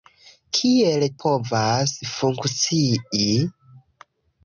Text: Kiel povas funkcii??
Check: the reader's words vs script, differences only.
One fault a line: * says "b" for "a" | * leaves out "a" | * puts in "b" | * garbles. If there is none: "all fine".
all fine